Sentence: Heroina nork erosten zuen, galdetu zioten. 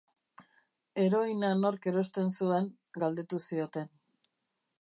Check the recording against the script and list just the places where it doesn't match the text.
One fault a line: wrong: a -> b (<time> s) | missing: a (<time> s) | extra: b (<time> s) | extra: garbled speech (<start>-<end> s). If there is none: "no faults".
no faults